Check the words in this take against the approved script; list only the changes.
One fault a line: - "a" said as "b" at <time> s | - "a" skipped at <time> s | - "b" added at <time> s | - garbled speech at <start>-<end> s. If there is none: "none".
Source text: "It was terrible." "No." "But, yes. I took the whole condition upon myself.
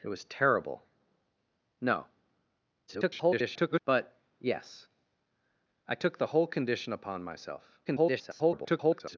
- garbled speech at 2.9-3.8 s
- garbled speech at 7.8-9.2 s